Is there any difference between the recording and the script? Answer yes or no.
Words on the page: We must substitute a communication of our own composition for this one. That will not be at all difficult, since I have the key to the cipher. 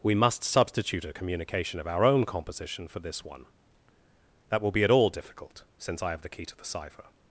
yes